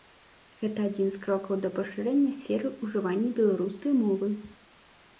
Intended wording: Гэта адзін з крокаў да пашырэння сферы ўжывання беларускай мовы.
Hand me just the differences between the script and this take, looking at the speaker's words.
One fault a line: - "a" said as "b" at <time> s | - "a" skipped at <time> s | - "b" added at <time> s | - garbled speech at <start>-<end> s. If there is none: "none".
none